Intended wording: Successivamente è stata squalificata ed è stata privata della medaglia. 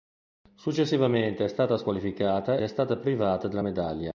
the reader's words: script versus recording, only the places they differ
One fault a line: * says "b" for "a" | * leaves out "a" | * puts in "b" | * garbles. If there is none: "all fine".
* leaves out "ed"